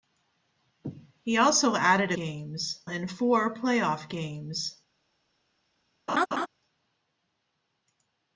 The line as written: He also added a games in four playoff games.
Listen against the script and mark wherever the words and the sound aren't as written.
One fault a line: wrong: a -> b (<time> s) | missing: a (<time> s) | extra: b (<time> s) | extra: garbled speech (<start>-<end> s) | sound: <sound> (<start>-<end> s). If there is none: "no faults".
sound: laugh (6.1-6.5 s)